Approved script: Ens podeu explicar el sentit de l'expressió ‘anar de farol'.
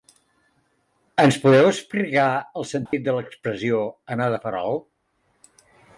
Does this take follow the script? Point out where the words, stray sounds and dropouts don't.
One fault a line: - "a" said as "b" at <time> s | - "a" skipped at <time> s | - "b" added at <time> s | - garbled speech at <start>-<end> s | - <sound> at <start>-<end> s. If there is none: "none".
- dropout at 2.9-2.9 s